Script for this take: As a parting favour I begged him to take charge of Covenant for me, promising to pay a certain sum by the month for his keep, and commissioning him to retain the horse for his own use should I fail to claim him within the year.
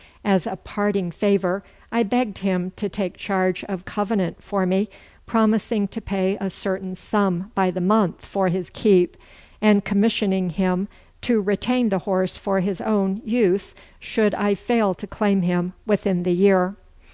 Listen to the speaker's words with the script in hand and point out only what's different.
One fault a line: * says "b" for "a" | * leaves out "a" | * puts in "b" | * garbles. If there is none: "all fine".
all fine